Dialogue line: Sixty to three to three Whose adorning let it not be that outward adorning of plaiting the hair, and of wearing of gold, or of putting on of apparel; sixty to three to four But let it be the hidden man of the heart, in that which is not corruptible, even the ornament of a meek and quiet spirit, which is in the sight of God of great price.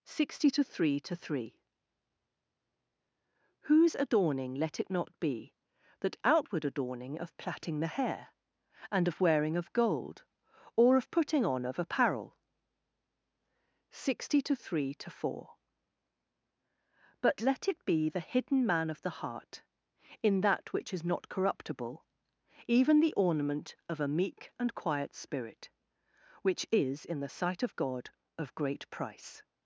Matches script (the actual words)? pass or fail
pass